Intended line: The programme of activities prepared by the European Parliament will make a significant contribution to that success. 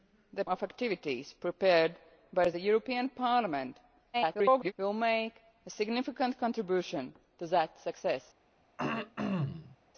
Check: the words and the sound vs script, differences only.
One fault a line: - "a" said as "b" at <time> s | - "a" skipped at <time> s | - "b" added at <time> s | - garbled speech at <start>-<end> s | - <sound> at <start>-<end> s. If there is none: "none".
- "programme" skipped at 0.5 s
- garbled speech at 4.1-4.7 s
- throat clearing at 8.8-9.8 s